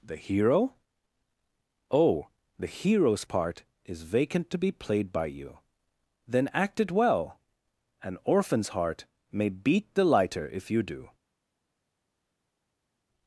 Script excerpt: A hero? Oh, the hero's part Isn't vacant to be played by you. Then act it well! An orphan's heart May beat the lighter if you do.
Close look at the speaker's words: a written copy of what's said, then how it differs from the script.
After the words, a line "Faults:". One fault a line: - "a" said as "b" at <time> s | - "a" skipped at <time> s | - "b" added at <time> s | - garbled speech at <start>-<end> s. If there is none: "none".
The hero? Oh, the hero's part Is vacant to be played by you. Then act it well! An orphan's heart May beat the lighter if you do.
Faults:
- "A" said as "The" at 0.0 s
- "Isn't" said as "Is" at 3.8 s